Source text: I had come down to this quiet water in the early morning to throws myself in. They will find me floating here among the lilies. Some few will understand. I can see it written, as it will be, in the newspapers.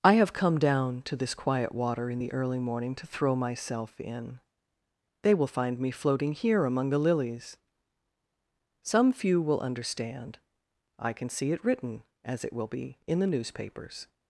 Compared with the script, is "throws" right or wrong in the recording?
wrong